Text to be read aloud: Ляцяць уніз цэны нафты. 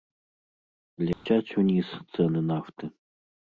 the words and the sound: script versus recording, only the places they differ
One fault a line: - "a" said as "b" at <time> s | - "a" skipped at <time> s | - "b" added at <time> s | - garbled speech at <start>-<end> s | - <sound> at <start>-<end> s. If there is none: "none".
- dropout at 1.1-1.3 s